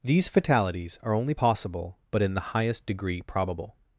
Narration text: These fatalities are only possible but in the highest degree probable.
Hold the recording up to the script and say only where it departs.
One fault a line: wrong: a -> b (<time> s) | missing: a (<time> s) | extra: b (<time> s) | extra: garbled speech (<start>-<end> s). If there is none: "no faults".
no faults